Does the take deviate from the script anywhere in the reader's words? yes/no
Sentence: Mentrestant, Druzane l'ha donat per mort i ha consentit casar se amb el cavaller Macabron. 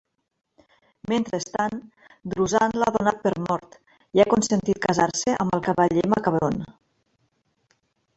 no